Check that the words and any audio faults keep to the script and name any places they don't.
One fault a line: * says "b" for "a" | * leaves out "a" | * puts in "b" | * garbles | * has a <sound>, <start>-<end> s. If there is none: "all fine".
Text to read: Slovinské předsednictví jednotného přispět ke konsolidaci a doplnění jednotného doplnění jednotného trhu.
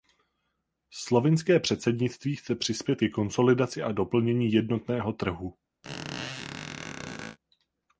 * says "chce" for "jednotného"
* leaves out "doplnění jednotného"
* has a squeak, 5.8-7.4 s